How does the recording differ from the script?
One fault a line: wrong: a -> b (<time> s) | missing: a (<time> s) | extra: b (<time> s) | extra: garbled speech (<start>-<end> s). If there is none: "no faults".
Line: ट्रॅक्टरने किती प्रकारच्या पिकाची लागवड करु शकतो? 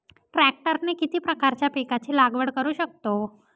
no faults